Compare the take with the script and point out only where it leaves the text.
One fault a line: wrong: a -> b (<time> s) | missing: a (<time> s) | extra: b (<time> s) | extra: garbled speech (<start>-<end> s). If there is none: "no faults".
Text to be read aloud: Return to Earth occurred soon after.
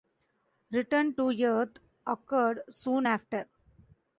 no faults